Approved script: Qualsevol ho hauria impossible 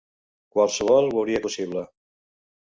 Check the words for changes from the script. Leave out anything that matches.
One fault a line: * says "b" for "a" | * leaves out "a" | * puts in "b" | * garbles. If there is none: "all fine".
all fine